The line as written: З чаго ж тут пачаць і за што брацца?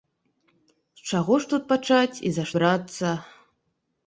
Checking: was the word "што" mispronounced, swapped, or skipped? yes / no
yes